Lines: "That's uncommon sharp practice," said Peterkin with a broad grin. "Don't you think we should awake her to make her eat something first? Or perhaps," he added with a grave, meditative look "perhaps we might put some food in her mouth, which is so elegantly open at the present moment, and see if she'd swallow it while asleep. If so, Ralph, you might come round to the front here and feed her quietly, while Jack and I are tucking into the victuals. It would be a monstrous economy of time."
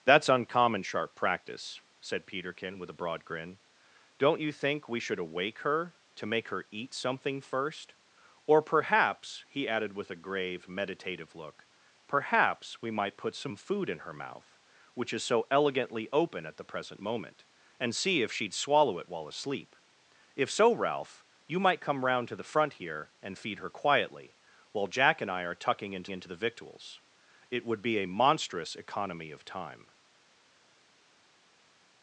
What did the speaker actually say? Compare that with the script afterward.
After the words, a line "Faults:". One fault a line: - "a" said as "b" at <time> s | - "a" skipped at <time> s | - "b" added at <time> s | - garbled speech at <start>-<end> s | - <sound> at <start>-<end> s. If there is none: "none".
"That's uncommon sharp practice," said Peterkin with a broad grin. "Don't you think we should awake her to make her eat something first? Or perhaps," he added with a grave, meditative look "perhaps we might put some food in her mouth, which is so elegantly open at the present moment, and see if she'd swallow it while asleep. If so, Ralph, you might come round to the front here and feed her quietly, while Jack and I are tucking into into the victuals. It would be a monstrous economy of time."
Faults:
- "into" added at 26.1 s